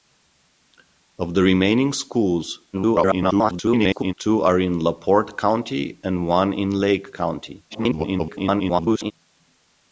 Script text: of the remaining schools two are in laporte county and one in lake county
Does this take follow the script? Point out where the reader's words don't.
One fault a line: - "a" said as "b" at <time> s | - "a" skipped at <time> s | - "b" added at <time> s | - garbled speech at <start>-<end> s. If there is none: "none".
- garbled speech at 2.7-4.1 s
- garbled speech at 7.7-9.1 s